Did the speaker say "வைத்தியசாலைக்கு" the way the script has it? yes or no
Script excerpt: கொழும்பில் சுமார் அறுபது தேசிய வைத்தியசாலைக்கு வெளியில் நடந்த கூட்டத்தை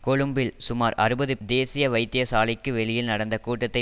yes